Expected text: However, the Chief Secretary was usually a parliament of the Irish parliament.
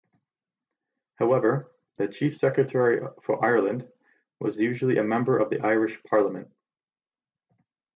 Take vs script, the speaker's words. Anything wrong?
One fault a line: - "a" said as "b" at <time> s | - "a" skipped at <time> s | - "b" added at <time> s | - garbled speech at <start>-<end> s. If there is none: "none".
- "for Ireland" added at 3.2 s
- "parliament" said as "member" at 5.0 s